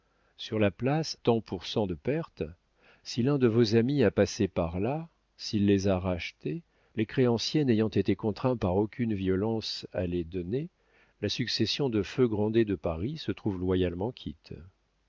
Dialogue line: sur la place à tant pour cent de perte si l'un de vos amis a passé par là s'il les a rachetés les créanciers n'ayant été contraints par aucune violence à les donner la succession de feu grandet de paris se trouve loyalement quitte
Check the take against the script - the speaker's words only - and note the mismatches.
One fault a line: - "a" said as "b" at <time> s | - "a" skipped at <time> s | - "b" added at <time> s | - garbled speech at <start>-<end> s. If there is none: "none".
- "à" skipped at 1.1 s